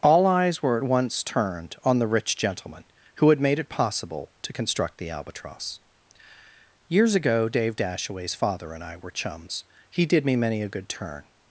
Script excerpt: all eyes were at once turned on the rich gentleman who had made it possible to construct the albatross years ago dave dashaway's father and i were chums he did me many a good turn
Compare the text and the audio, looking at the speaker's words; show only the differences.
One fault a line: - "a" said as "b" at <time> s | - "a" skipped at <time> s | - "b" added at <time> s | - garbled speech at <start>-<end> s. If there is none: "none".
none